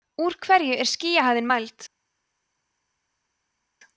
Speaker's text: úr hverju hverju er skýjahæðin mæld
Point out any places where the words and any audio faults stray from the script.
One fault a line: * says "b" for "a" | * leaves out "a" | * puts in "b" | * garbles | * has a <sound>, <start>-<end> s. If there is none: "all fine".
* leaves out "hverju"